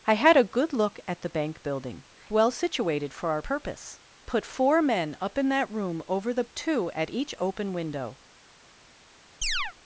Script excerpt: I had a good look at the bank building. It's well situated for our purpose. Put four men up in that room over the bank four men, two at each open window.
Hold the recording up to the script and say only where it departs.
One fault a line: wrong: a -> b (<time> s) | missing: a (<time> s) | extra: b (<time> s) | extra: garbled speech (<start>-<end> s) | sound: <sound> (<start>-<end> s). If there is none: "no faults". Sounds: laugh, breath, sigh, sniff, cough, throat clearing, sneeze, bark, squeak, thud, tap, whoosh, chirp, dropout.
missing: It's (2.0 s)
missing: bank four men (6.4 s)
sound: chirp (9.4-9.7 s)